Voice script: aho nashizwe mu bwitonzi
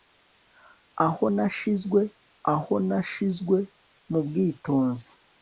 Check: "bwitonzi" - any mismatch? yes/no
no